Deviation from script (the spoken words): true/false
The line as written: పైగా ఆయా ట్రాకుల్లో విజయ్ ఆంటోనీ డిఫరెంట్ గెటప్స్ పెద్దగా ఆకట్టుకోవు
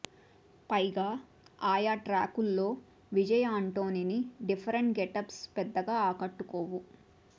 false